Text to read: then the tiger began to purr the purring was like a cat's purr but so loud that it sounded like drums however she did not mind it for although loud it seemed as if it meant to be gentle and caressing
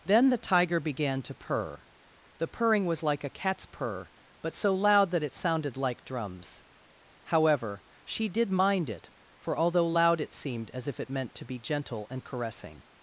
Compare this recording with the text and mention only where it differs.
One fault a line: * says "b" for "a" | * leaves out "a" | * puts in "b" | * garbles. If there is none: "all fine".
* leaves out "not"